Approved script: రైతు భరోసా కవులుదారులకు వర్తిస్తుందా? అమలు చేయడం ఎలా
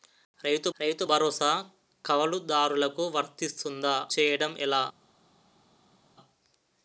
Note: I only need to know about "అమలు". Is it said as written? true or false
false